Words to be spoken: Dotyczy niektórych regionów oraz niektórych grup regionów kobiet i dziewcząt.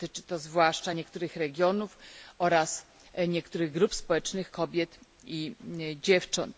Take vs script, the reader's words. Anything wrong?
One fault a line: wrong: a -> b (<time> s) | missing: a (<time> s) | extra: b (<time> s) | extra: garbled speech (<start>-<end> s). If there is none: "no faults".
extra: to zwłaszcza (0.2 s)
wrong: regionów -> społecznych (3.9 s)